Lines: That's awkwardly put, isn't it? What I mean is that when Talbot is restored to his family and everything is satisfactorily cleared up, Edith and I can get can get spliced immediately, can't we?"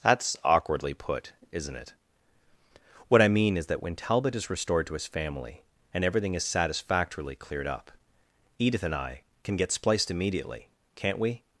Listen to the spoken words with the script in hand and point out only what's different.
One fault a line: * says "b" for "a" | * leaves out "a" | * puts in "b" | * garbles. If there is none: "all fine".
* leaves out "can get"